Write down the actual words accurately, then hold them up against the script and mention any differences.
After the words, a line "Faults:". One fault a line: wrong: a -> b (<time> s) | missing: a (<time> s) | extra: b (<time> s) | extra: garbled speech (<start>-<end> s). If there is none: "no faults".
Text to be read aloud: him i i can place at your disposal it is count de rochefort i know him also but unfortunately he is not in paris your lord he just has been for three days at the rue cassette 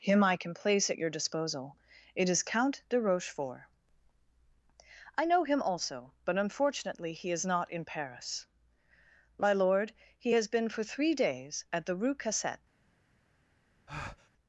him i can place at your disposal it is count de rochefort i know him also but unfortunately he is not in paris my lord he has been for three days at the rue cassette
Faults:
missing: i (0.3 s)
wrong: your -> my (9.4 s)
missing: just (10.4 s)